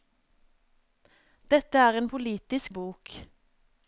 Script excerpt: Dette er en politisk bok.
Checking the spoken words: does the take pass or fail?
pass